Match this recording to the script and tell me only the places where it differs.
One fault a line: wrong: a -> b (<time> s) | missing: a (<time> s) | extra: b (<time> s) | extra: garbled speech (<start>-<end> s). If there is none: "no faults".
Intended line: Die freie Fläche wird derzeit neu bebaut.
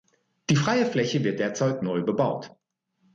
no faults